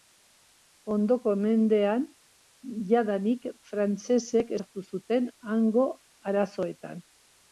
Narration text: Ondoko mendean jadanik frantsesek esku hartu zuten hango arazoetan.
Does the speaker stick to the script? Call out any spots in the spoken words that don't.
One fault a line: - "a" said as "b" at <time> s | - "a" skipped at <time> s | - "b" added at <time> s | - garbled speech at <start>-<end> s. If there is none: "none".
- "esku" skipped at 4.6 s